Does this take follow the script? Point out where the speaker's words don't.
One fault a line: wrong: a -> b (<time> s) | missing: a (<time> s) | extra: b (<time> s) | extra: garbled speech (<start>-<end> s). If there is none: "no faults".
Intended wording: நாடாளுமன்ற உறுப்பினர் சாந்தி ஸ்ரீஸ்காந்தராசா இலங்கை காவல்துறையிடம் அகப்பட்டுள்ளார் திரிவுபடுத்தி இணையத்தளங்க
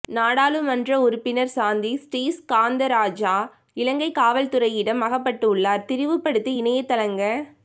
no faults